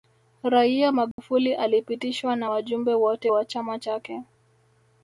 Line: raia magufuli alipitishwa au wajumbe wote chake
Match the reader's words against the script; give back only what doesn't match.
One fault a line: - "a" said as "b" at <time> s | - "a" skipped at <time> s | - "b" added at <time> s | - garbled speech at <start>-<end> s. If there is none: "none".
- "au" said as "na" at 2.4 s
- "wa chama" added at 3.3 s